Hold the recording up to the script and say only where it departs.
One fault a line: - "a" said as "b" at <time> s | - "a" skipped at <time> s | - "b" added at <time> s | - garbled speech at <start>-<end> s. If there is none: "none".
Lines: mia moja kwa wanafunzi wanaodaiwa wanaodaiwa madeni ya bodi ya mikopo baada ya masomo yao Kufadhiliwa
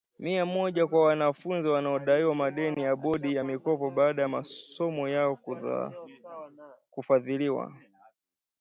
- "wanaodaiwa" skipped at 2.4 s